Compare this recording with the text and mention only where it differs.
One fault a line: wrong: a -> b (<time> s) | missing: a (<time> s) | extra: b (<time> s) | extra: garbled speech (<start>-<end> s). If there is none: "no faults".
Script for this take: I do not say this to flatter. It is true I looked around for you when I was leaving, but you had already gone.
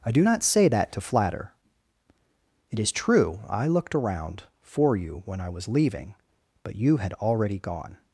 wrong: this -> that (0.7 s)